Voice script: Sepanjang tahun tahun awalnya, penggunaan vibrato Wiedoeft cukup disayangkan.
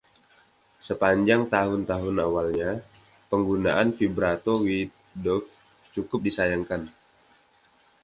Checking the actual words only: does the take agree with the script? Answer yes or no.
yes